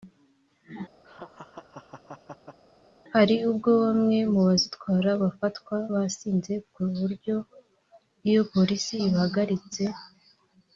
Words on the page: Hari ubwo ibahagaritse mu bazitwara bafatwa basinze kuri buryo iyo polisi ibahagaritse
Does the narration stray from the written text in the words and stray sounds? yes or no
yes